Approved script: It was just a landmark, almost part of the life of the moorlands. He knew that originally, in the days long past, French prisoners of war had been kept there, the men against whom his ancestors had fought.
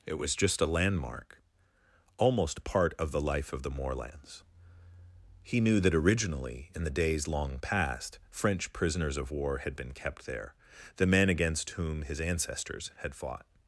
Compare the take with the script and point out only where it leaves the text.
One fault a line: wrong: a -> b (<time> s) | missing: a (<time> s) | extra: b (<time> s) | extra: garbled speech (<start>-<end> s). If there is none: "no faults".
no faults